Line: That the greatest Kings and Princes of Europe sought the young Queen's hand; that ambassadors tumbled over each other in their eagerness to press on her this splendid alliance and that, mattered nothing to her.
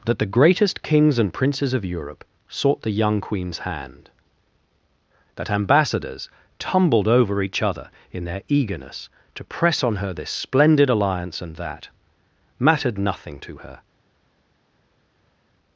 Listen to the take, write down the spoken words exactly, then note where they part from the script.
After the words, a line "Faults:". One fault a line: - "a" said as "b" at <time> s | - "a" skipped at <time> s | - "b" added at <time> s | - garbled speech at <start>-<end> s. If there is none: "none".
That the greatest Kings and Princes of Europe sought the young Queen's hand; that ambassadors tumbled over each other in their eagerness to press on her this splendid alliance and that, mattered nothing to her.
Faults:
none